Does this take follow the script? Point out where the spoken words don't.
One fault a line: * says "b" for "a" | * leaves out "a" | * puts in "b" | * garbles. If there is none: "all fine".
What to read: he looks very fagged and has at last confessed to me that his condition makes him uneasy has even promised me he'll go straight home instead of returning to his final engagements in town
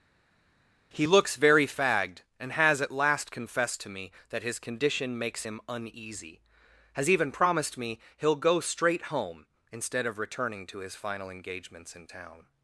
all fine